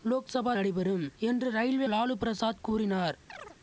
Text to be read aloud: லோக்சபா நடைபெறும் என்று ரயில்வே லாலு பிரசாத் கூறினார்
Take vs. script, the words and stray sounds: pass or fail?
fail